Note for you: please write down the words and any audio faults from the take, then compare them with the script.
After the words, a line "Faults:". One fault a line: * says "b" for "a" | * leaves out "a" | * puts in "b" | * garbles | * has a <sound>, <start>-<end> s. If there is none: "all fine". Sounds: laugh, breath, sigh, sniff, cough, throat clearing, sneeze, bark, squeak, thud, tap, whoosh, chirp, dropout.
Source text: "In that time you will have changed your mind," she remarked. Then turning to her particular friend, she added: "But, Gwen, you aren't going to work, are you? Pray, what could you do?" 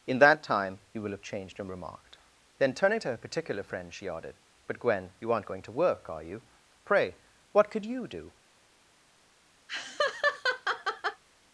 "In that time you will have changed your remarked. Then turning to her particular friend, she added: "But, Gwen, you aren't going to work, are you? Pray, what could you do?"
Faults:
* leaves out "mind she"
* has a laugh, 9.7-11.2 s